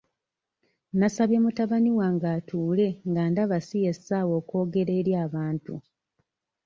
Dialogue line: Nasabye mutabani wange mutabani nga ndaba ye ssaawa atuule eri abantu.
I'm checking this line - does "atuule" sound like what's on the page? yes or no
no